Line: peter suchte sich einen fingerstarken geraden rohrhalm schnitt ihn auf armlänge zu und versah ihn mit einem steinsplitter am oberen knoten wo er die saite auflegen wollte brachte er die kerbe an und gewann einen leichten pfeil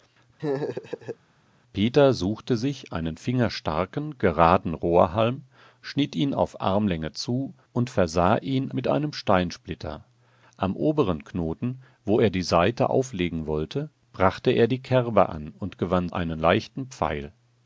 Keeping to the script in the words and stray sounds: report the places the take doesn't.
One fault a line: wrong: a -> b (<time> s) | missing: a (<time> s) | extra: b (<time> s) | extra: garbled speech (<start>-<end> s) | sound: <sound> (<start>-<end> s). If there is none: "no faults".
sound: laugh (0.4-1.2 s)